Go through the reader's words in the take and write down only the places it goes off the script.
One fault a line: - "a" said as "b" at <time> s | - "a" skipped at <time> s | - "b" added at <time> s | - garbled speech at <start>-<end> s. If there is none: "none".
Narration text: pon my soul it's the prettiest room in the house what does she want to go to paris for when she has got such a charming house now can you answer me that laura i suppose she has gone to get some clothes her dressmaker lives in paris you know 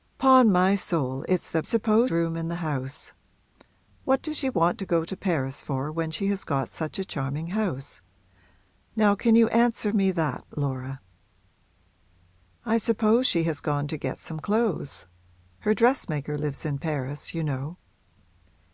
- "prettiest" said as "suppose" at 1.6 s